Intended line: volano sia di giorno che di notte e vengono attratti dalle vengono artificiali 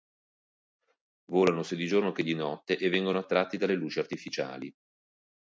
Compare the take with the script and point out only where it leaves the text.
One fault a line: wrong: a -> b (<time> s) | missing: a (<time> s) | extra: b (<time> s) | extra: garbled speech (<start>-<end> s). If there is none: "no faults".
wrong: vengono -> luci (3.7 s)